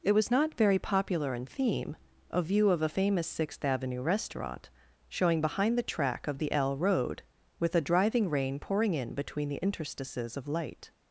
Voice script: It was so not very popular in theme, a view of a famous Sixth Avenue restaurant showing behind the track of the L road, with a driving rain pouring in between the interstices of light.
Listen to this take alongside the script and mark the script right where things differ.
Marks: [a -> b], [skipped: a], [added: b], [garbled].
It was [skipped: so] not very popular in theme, a view of a famous Sixth Avenue restaurant showing behind the track of the L road, with a driving rain pouring in between the interstices of light.